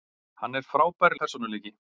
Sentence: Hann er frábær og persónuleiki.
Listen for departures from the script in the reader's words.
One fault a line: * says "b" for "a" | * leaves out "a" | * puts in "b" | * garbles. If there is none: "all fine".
all fine